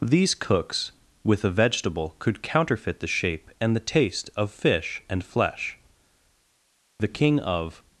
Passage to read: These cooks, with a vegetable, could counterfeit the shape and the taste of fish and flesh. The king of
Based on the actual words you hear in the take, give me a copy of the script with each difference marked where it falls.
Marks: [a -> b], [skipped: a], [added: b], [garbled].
These cooks, with a vegetable, could counterfeit the shape and the taste of fish and flesh. The king of